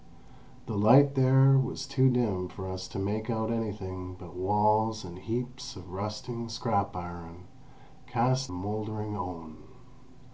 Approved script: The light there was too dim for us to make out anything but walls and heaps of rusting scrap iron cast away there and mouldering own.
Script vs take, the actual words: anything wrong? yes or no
yes